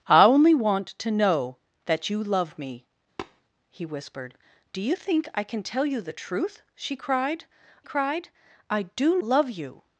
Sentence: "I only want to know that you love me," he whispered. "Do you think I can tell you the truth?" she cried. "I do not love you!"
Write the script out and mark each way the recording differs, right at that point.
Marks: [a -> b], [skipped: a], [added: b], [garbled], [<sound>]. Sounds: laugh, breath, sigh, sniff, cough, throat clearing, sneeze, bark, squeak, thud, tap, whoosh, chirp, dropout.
"I only want to know that you love me," [tap] he whispered. "Do you think I can tell you the truth?" she cried. [added: cried] "I do [skipped: not] love you!"